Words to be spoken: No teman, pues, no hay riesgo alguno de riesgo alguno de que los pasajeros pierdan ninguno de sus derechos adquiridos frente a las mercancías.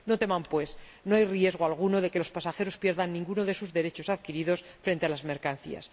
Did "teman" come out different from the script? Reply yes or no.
no